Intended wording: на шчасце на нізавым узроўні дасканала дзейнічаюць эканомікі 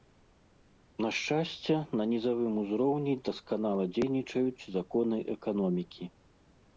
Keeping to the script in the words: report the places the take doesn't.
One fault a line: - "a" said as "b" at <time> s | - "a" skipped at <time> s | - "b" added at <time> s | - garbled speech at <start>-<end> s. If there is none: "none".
- "законы" added at 4.8 s